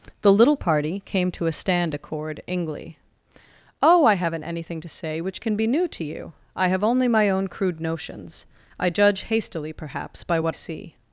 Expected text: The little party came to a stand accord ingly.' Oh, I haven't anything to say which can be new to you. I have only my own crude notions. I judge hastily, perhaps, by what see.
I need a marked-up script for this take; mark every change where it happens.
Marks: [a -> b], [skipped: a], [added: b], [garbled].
The little party came to a stand accord ingly.' Oh, I haven't anything to say which can be new to you. I have only my own crude notions. I judge hastily, perhaps, by what see.